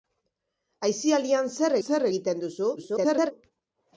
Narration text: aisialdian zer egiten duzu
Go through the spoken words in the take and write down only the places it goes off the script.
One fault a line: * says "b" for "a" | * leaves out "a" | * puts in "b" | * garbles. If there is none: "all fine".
* puts in "zer"
* garbles